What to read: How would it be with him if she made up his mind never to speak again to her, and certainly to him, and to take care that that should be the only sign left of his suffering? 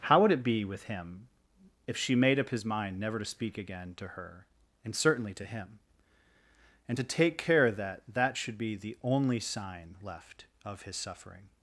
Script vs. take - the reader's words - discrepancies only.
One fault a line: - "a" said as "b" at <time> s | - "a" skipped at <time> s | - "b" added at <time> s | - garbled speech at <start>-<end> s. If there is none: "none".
none